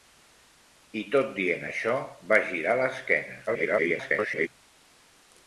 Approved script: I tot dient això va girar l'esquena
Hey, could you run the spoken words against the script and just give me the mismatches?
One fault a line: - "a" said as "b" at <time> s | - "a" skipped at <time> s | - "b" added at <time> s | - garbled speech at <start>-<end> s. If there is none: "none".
- garbled speech at 3.5-4.5 s